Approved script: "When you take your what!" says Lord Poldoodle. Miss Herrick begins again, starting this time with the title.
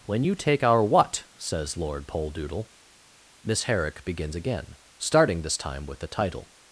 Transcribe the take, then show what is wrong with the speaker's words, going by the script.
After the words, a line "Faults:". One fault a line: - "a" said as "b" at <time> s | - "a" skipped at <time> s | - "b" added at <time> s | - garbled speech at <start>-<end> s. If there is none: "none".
"When you take our what!" says Lord Poldoodle. Miss Herrick begins again, starting this time with the title.
Faults:
- "your" said as "our" at 0.6 s